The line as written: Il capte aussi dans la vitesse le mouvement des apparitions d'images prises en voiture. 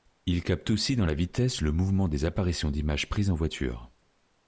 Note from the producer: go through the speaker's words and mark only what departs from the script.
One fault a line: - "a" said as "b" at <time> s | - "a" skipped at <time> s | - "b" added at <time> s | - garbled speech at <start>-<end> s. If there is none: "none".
none